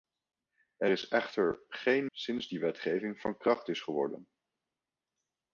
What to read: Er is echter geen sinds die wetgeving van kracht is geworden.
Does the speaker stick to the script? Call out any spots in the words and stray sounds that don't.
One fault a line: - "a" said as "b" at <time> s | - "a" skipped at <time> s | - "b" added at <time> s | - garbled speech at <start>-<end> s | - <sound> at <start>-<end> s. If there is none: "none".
none